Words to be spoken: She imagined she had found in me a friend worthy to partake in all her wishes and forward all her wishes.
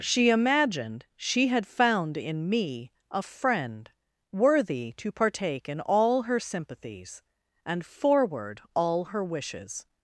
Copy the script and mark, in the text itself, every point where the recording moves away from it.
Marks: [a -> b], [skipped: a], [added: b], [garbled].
She imagined she had found in me a friend worthy to partake in all her [wishes -> sympathies] and forward all her wishes.